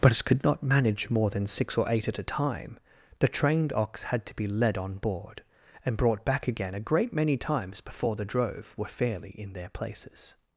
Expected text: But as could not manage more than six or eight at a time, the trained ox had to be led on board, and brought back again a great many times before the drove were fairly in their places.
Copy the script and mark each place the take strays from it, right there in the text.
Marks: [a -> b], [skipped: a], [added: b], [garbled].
But as could not manage more than six or eight at a time, the trained ox had to be led on board, and brought back again a great many times before the drove were fairly in their places.